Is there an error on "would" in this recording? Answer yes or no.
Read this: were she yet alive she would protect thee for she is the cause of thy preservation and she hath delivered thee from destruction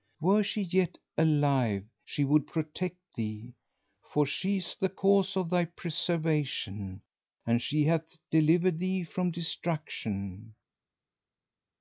no